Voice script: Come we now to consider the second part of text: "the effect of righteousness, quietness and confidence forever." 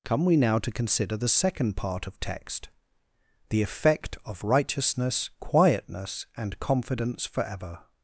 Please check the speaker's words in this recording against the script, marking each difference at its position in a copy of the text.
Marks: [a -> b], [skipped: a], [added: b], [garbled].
Come we now to consider the second part of text: "the effect of righteousness, quietness and confidence forever."